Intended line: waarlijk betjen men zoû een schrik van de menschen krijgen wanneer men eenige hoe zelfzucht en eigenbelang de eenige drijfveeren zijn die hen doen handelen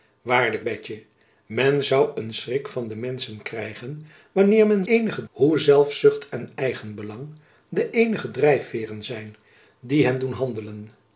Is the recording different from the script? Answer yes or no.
no